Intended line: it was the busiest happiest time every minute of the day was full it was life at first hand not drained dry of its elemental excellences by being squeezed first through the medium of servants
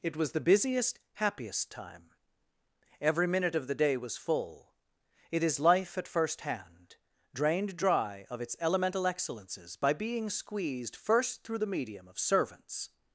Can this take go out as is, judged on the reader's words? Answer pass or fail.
fail